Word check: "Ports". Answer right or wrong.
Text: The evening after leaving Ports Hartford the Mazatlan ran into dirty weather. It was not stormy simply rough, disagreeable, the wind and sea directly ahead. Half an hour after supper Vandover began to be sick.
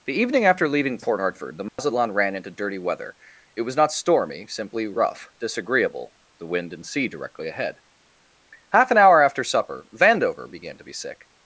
wrong